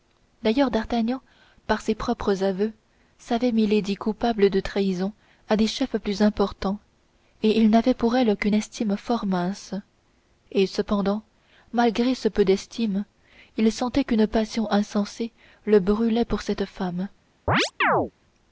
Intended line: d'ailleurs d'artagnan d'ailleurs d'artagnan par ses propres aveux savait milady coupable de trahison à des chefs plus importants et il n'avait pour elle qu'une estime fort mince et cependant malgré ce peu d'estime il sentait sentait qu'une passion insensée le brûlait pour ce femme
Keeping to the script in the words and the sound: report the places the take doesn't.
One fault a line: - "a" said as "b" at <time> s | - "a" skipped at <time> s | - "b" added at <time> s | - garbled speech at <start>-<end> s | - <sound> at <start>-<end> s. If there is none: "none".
- "d'ailleurs d'artagnan" skipped at 1.2 s
- "sentait" skipped at 14.0 s
- "ce" said as "cette" at 16.4 s
- chirp at 17.5-18.1 s